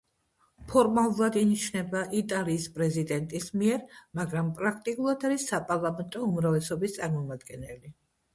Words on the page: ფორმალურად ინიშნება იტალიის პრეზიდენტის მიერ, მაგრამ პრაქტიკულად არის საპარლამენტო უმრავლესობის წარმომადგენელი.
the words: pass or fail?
pass